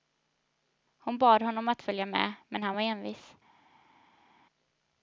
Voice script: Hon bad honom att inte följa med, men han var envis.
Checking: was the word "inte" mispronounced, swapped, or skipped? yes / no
yes